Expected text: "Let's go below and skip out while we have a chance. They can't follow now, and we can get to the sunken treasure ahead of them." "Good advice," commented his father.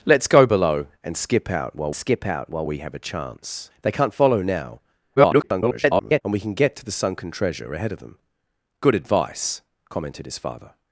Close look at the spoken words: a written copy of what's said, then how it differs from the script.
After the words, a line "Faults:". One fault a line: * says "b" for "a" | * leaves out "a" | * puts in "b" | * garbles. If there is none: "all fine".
"Let's go below and skip out while skip out while we have a chance. They can't follow now, [garbled] and we can get to the sunken treasure ahead of them." "Good advice," commented his father.
Faults:
* puts in "skip out while"
* garbles